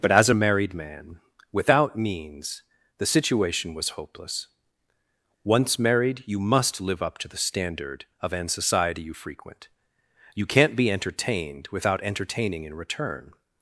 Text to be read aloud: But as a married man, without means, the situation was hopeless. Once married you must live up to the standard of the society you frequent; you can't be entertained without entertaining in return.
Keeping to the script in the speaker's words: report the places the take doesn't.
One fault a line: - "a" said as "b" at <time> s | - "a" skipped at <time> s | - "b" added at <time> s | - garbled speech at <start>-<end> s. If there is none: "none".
- "the" said as "an" at 8.3 s